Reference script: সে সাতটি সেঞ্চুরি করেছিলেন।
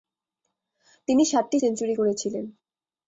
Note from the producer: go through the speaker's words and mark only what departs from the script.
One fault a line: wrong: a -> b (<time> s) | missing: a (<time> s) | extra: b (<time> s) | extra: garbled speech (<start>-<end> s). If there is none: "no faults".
wrong: সে -> তিনি (1.1 s)